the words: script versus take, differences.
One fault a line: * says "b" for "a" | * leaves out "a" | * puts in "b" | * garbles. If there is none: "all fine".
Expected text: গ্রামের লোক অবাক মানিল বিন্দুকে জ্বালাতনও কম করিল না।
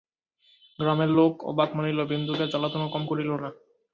all fine